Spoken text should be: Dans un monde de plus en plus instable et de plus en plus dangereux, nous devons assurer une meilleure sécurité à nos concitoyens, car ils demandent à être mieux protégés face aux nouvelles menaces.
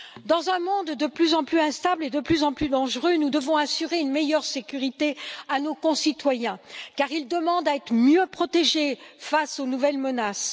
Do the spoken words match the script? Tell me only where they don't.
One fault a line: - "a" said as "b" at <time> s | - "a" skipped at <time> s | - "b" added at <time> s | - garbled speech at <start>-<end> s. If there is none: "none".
none